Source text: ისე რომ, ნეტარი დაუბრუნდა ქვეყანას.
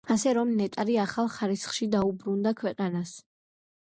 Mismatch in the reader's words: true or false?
true